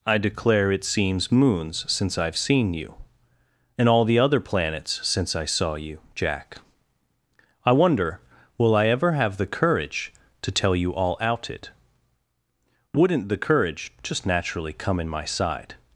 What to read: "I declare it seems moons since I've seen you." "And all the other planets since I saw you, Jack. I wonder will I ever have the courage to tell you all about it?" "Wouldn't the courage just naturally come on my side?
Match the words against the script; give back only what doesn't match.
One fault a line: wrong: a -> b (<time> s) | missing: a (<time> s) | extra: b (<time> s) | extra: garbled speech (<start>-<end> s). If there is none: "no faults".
wrong: about -> out (11.2 s)
wrong: on -> in (15.0 s)